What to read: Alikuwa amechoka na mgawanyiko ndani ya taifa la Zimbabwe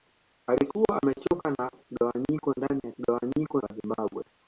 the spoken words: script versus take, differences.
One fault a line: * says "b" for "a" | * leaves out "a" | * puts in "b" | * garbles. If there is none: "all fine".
* says "mgawanyiko" for "taifa"